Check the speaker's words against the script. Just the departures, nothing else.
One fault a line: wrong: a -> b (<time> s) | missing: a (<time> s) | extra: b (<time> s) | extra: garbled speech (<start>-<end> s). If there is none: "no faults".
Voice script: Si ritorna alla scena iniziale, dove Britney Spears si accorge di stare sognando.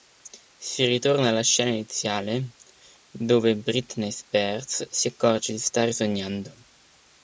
no faults